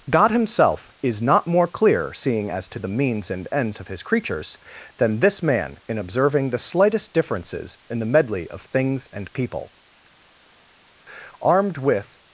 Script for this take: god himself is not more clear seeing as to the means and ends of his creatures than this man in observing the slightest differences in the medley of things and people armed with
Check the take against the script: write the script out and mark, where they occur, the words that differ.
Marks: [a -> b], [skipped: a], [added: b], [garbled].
god himself is not more clear seeing as to the means and ends of his creatures than this man in observing the slightest differences in the medley of things and people armed with